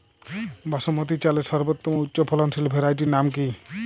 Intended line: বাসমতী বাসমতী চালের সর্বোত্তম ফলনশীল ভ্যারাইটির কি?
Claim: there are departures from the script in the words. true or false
true